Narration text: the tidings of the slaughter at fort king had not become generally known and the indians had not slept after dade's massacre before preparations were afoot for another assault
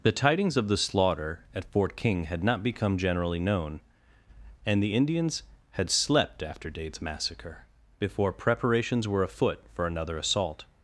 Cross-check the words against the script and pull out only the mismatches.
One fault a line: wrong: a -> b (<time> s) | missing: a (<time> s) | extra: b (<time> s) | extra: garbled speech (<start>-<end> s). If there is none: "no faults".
missing: not (5.9 s)